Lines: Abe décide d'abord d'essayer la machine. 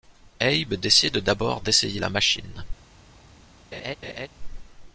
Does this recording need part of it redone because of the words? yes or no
no